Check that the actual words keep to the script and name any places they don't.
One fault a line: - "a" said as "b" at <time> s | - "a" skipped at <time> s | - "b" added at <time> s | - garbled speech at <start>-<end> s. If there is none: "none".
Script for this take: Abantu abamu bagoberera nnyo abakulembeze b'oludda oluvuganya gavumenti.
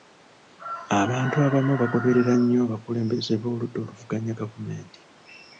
none